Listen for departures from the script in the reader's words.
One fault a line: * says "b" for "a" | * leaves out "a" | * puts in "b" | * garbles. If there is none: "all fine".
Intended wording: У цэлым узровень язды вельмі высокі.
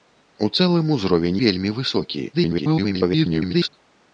* leaves out "язды"
* garbles